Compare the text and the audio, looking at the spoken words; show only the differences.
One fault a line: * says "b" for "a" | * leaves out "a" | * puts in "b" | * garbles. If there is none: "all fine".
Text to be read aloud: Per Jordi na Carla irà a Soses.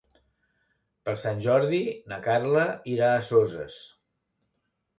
* puts in "Sant"